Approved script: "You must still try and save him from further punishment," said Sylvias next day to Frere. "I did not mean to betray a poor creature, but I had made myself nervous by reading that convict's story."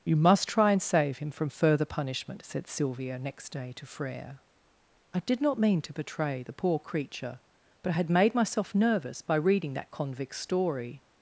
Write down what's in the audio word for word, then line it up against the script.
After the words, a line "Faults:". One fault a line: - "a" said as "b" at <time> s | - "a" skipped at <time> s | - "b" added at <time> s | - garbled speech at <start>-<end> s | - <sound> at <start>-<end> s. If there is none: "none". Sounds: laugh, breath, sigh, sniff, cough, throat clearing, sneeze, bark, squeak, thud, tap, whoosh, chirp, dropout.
"You must try and save him from further punishment," said Sylvia next day to Frere. "I did not mean to betray the poor creature, but I had made myself nervous by reading that convict's story."
Faults:
- "still" skipped at 0.5 s
- "Sylvias" said as "Sylvia" at 2.6 s
- "a" said as "the" at 6.4 s